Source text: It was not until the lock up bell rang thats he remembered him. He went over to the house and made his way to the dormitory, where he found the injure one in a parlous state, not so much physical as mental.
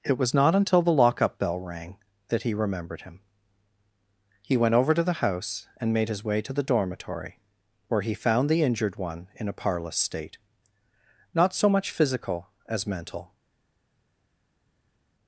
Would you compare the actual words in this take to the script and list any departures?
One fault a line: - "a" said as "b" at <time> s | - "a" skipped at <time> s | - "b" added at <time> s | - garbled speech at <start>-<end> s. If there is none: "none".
- "thats" said as "that" at 2.3 s
- "injure" said as "injured" at 8.6 s